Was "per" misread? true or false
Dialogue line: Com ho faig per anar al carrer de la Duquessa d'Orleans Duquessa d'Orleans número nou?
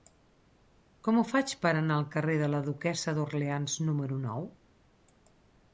false